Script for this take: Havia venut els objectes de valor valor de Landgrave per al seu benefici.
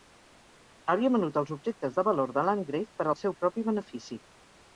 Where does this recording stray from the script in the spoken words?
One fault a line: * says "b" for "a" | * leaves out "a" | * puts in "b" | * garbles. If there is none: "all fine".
* leaves out "valor"
* puts in "propi"